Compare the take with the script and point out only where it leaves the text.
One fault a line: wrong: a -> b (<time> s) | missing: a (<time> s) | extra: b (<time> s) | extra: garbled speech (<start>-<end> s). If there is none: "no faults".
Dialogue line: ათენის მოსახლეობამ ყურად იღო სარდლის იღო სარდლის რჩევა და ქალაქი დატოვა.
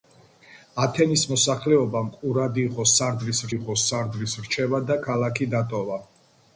no faults